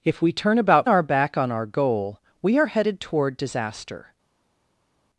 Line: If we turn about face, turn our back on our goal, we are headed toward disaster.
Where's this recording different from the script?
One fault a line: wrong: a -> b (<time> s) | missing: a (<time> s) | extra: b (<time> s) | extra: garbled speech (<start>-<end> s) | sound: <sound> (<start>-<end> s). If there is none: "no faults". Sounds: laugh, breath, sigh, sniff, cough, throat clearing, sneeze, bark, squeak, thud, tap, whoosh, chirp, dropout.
missing: face turn (0.9 s)